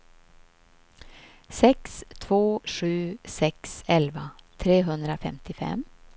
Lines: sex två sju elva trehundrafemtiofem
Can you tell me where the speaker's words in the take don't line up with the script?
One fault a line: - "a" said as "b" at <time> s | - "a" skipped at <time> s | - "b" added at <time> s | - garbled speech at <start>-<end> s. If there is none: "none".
- "sex" added at 3.2 s